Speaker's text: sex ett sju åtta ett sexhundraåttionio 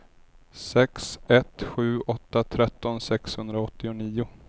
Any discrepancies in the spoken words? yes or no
yes